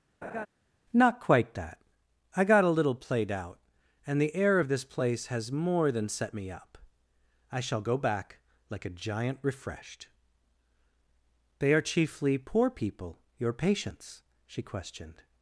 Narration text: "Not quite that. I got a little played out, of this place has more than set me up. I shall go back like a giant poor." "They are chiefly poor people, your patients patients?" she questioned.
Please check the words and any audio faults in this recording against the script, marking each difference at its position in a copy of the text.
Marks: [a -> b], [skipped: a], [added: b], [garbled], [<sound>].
[laugh] "Not quite that. I got a little played out, [added: and the air] of this place has more than set me up. I shall go back like a giant [poor." -> refreshed] "They are chiefly poor people, your patients [skipped: patients?"] she questioned.